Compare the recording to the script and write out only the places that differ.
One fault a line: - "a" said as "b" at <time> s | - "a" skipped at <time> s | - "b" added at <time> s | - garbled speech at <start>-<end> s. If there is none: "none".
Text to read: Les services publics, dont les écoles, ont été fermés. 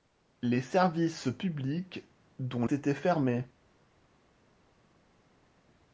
- "les écoles ont" skipped at 2.6 s